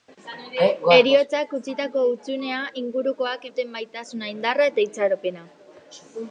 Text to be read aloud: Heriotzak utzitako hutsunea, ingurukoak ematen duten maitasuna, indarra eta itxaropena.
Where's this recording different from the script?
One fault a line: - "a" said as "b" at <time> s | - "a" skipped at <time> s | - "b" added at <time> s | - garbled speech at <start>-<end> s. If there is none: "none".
- "ematen" skipped at 3.5 s